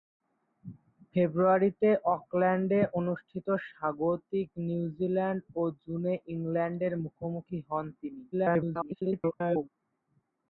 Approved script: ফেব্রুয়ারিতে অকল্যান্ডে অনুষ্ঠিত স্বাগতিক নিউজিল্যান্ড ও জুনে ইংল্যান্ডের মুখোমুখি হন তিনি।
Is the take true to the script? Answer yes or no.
no